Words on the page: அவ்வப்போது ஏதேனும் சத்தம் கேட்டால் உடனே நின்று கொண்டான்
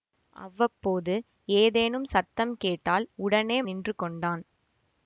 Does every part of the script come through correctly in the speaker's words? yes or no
yes